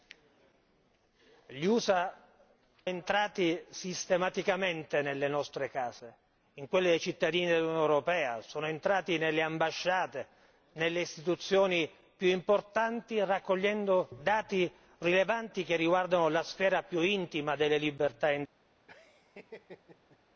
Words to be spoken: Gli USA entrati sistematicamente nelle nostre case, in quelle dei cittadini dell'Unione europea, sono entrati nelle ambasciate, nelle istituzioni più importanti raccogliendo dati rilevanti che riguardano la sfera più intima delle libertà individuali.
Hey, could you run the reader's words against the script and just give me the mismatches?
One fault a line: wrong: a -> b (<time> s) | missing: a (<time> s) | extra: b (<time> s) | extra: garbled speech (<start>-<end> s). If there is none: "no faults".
no faults